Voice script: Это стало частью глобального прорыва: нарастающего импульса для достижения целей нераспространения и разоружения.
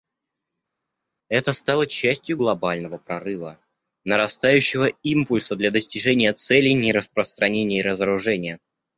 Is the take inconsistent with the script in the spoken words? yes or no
no